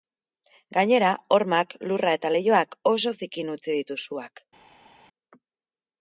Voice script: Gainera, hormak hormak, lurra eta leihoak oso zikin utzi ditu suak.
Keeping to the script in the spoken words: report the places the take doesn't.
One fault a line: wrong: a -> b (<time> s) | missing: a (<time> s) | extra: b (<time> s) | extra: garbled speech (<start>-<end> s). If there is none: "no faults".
missing: hormak (1.8 s)